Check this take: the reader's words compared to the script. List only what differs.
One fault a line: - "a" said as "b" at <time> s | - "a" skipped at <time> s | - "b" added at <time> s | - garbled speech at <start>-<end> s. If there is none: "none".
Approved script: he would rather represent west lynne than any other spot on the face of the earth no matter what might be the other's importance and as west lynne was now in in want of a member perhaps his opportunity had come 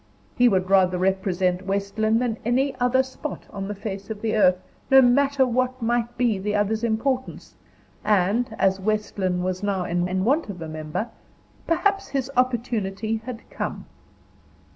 none